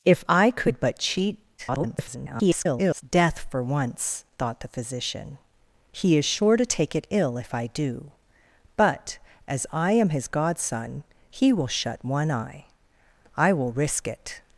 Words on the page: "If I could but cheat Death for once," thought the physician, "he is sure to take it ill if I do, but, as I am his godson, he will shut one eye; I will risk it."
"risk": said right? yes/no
yes